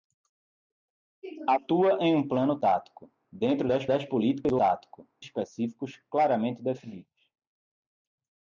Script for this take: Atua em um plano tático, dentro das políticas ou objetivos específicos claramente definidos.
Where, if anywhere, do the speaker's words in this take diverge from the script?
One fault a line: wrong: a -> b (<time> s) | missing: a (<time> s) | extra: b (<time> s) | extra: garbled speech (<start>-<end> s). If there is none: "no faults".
extra: das (3.9 s)
wrong: objetivos -> tático (4.6 s)